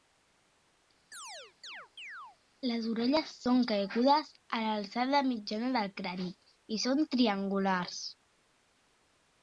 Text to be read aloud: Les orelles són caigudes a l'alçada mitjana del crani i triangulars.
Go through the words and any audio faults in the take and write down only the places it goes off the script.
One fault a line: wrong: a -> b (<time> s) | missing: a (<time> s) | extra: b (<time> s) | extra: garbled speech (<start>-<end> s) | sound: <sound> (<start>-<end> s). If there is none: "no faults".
sound: chirp (1.1-2.4 s)
extra: són (6.8 s)